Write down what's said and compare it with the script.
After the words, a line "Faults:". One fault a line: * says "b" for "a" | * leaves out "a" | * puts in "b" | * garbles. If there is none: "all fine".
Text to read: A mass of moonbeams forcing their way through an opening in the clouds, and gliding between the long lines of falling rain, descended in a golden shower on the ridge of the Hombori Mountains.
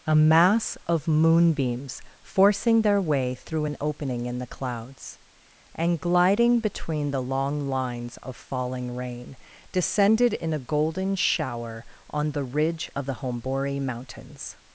A mass of moonbeams forcing their way through an opening in the clouds, and gliding between the long lines of falling rain, descended in a golden shower on the ridge of the Hombori Mountains.
Faults:
all fine